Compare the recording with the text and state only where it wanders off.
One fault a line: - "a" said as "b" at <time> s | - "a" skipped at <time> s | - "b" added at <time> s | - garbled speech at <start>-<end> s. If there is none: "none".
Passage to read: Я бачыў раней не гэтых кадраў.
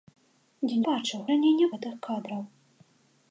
none